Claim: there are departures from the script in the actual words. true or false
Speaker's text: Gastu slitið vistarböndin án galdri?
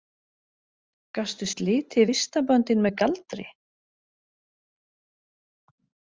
true